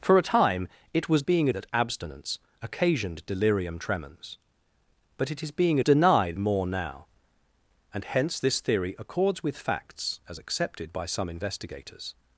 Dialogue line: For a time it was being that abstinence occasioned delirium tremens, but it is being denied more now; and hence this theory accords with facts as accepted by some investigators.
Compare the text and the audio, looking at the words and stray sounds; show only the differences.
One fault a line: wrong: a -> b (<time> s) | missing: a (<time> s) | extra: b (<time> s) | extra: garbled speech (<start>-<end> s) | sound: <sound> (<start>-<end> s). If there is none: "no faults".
no faults